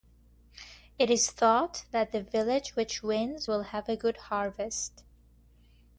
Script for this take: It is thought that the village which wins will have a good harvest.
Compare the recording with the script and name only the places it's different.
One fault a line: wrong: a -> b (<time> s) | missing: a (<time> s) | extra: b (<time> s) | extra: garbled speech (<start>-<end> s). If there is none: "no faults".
no faults